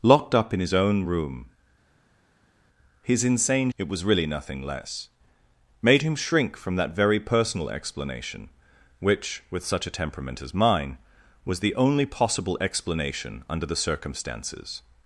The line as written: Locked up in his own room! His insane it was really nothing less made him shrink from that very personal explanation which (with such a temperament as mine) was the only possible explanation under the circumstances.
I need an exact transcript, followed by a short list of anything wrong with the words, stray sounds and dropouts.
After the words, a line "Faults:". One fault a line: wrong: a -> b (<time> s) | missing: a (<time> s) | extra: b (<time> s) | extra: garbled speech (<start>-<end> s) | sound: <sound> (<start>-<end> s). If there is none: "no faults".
Locked up in his own room! His insane it was really nothing less made him shrink from that very personal explanation which (with such a temperament as mine) was the only possible explanation under the circumstances.
Faults:
no faults